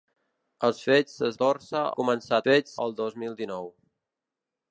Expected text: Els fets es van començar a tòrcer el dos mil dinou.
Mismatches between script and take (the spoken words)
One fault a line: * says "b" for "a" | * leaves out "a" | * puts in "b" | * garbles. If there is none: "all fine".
* says "tòrcer" for "van"
* says "fets" for "tòrcer"